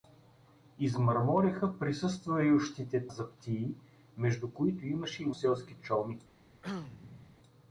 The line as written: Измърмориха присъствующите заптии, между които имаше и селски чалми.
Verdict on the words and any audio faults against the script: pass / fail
fail